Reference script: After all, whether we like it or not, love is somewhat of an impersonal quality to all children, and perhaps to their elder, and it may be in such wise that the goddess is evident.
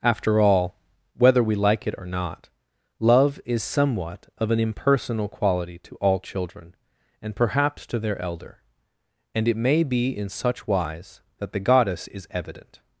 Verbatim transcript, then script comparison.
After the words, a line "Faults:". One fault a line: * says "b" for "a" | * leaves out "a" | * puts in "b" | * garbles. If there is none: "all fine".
After all, whether we like it or not, love is somewhat of an impersonal quality to all children, and perhaps to their elder, and it may be in such wise that the goddess is evident.
Faults:
all fine